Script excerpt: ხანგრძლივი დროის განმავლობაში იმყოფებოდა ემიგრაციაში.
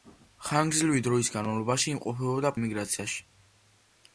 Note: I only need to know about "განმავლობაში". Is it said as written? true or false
true